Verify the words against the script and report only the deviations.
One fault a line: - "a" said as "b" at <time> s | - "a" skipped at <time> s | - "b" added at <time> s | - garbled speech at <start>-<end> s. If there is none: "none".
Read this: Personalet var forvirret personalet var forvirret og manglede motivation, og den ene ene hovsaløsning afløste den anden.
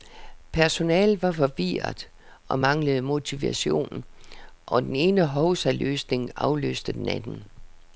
- "personalet var forvirret" skipped at 2.1 s
- "ene" skipped at 5.3 s